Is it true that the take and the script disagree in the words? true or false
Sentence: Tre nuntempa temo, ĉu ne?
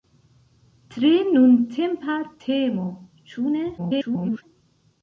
true